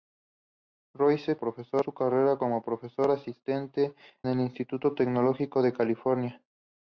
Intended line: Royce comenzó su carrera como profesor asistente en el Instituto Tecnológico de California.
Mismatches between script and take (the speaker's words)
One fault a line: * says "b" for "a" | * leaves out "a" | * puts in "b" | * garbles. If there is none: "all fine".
* says "profesor" for "comenzó"
* leaves out "en"